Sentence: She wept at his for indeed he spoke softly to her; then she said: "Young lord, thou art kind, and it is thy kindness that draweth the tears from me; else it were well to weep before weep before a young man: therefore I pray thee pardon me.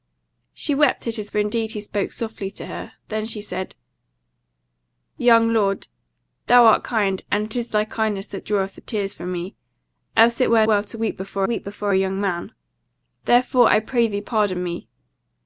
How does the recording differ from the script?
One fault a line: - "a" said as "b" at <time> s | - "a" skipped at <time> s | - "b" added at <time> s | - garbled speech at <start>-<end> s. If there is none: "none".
none